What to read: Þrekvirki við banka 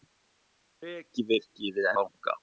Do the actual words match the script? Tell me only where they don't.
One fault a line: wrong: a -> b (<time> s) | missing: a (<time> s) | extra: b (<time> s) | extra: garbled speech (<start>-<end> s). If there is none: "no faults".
no faults